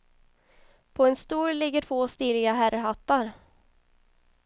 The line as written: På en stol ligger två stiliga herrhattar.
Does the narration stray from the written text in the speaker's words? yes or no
no